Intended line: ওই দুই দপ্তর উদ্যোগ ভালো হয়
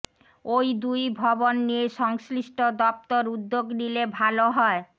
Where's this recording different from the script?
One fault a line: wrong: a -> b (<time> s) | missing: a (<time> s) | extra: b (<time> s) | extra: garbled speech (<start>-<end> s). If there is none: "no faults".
extra: ভবন নিয়ে সংশ্লিষ্ট (1.2 s)
extra: নিলে (3.8 s)